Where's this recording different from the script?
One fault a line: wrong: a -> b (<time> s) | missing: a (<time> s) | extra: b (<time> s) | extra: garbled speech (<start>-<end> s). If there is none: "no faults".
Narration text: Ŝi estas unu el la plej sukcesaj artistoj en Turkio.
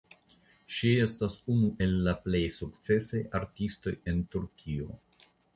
no faults